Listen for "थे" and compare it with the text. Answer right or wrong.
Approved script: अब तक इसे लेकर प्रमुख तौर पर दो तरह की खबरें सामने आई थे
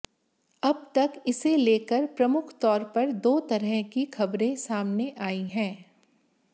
wrong